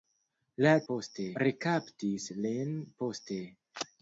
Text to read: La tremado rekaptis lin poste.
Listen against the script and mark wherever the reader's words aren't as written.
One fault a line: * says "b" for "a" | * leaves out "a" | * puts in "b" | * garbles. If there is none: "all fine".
* says "poste" for "tremado"